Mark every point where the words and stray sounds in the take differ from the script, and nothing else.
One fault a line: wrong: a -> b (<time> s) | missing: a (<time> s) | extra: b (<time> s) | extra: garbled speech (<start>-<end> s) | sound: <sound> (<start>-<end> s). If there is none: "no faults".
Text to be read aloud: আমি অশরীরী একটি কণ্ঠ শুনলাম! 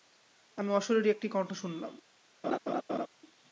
sound: laugh (2.4-3.1 s)